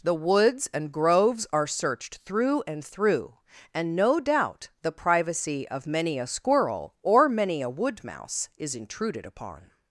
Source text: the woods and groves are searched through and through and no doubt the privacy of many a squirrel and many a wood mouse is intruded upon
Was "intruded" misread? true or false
false